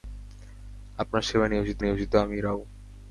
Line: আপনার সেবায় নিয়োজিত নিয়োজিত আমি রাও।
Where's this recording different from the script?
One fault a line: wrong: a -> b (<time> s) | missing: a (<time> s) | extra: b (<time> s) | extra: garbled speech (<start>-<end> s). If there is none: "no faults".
no faults